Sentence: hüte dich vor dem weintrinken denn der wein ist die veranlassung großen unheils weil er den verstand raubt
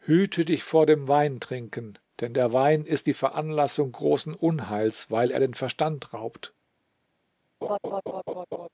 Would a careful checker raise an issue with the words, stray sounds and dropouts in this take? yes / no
yes